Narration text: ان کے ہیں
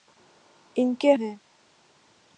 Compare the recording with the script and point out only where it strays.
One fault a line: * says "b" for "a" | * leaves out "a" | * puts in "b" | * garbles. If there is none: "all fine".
all fine